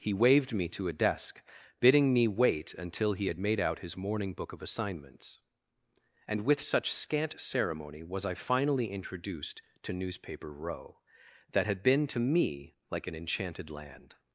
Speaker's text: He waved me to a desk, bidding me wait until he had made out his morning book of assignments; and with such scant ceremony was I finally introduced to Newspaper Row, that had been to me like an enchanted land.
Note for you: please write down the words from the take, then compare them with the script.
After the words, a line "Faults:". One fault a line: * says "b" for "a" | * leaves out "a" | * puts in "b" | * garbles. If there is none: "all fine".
He waved me to a desk, bidding me wait until he had made out his morning book of assignments; and with such scant ceremony was I finally introduced to Newspaper Row, that had been to me like an enchanted land.
Faults:
all fine